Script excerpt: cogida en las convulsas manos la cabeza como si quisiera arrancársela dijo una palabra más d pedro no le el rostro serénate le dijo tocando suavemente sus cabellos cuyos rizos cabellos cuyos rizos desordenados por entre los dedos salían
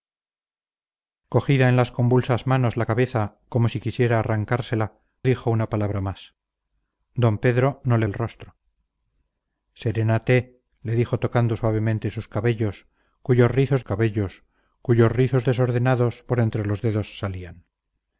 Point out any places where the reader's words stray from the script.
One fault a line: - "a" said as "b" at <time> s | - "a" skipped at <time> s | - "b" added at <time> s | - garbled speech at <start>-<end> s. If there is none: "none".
none